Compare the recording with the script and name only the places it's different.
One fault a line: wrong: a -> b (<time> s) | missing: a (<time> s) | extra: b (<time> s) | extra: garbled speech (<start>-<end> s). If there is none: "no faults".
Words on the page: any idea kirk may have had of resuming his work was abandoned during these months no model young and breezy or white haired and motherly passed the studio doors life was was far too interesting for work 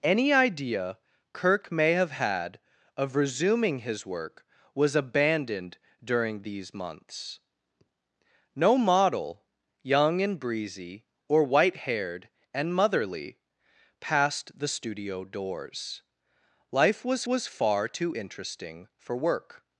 no faults